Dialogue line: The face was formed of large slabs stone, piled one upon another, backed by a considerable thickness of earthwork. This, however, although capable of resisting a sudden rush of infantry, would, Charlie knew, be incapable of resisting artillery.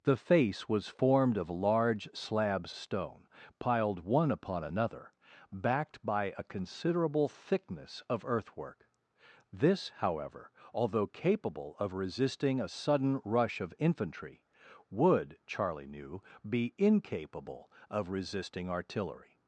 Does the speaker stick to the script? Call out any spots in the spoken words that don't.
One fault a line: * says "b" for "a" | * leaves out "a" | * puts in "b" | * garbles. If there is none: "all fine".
all fine